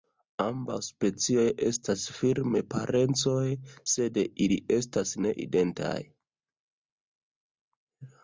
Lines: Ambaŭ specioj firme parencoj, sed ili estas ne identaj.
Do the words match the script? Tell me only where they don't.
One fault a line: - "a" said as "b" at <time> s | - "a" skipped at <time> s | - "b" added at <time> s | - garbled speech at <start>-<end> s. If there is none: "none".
- "estas" added at 1.6 s